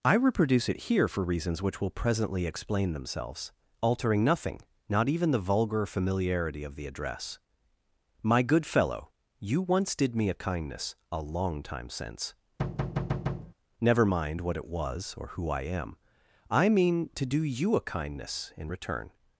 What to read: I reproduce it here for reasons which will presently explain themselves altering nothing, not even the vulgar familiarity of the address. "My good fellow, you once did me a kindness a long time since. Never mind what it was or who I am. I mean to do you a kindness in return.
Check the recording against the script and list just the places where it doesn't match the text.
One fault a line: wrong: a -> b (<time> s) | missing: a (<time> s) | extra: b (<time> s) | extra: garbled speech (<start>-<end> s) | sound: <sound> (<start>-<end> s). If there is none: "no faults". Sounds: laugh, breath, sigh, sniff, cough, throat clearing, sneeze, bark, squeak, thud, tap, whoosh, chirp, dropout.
sound: thud (12.6-13.5 s)